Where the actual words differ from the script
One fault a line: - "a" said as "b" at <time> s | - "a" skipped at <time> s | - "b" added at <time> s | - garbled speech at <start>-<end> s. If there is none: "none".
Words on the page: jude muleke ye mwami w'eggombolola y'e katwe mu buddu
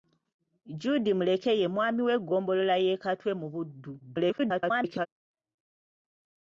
- garbled speech at 4.0-5.1 s